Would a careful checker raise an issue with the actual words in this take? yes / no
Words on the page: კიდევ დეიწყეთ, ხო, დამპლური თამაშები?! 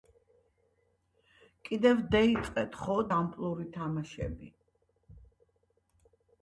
no